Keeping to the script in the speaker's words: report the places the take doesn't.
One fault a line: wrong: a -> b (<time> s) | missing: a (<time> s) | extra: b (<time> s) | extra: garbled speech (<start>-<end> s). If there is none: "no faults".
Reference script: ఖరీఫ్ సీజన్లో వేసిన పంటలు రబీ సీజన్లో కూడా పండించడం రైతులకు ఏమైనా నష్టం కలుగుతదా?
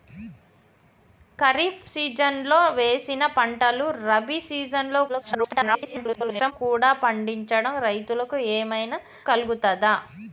extra: garbled speech (5.1-6.5 s)
missing: నష్టం (9.0 s)